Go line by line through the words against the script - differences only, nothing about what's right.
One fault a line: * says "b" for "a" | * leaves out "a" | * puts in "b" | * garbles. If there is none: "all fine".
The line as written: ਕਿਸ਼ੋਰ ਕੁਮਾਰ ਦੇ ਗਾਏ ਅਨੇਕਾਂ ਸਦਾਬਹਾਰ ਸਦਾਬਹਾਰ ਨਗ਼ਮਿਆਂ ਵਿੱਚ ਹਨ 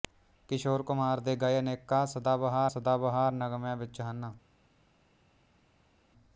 all fine